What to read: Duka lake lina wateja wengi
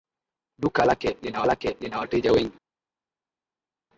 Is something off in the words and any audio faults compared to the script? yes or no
yes